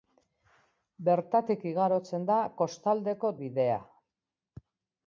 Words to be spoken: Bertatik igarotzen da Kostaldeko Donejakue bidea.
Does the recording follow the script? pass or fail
fail